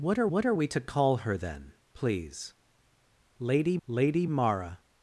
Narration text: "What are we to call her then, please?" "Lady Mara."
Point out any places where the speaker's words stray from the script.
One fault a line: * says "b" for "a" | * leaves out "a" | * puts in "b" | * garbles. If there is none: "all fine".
* puts in "what are"
* puts in "lady"